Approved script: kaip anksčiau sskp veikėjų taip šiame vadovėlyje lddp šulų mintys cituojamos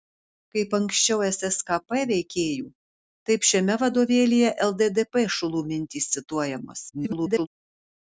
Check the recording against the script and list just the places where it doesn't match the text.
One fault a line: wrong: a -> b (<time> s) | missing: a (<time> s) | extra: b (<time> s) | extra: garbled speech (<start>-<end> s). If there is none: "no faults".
extra: garbled speech (6.9-7.5 s)